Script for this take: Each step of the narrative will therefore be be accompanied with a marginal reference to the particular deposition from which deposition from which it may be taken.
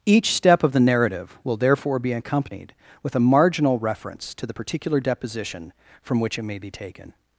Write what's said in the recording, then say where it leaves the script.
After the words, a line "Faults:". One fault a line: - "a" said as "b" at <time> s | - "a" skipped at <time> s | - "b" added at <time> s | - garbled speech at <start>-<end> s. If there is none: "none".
Each step of the narrative will therefore be accompanied with a marginal reference to the particular deposition from which it may be taken.
Faults:
- "be" skipped at 2.1 s
- "deposition from which" skipped at 6.4 s